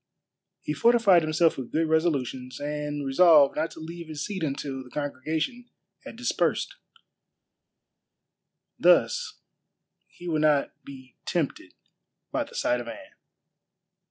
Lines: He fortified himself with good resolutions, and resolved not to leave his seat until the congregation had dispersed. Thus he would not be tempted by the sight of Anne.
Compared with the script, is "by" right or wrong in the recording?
right